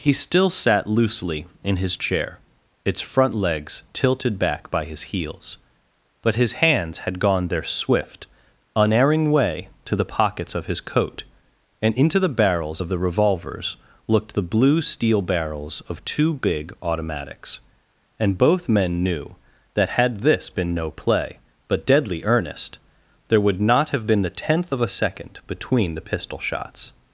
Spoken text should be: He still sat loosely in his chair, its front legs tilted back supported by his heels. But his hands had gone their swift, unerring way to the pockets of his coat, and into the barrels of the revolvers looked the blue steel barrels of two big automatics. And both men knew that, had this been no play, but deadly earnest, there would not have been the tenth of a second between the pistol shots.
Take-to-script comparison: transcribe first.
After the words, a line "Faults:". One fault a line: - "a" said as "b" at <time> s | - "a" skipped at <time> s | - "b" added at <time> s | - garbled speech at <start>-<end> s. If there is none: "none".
He still sat loosely in his chair, its front legs tilted back by his heels. But his hands had gone their swift, unerring way to the pockets of his coat, and into the barrels of the revolvers looked the blue steel barrels of two big automatics. And both men knew that, had this been no play, but deadly earnest, there would not have been the tenth of a second between the pistol shots.
Faults:
- "supported" skipped at 4.7 s